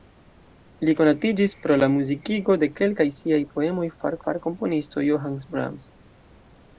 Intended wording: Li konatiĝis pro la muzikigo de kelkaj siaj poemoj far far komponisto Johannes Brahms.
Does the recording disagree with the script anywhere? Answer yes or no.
no